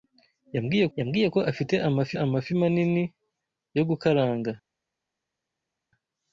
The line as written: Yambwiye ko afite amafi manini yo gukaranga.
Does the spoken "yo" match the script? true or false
true